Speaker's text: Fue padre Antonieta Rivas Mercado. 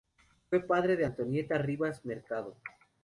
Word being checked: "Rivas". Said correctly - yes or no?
yes